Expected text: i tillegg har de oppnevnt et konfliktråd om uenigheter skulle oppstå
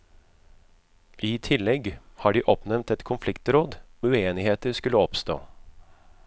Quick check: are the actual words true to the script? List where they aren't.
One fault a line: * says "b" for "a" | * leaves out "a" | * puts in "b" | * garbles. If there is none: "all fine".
* leaves out "om"